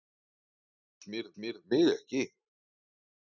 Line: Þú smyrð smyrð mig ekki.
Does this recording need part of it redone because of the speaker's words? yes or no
no